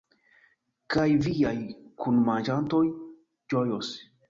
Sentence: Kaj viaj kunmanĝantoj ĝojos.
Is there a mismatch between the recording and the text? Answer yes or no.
no